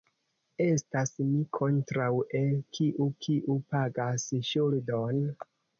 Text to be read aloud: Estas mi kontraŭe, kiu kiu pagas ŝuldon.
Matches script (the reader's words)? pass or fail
pass